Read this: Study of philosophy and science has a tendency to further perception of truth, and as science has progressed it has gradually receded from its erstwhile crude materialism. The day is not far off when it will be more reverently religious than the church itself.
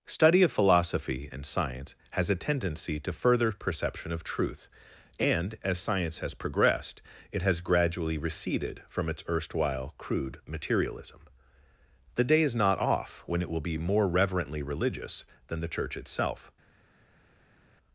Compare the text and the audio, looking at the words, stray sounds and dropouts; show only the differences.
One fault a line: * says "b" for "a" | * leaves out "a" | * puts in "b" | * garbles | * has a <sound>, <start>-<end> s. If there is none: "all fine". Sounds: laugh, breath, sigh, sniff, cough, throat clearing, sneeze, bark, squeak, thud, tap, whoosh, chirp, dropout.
* leaves out "far"